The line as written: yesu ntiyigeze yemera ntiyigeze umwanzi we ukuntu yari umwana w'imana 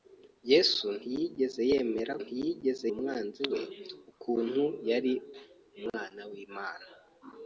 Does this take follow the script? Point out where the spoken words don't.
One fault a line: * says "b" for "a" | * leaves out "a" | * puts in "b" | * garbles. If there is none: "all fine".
all fine